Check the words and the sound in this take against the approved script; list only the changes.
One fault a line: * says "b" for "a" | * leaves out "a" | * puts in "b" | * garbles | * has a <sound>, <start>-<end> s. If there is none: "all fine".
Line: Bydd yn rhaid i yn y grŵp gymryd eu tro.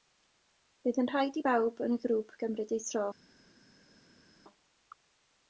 * puts in "bawb"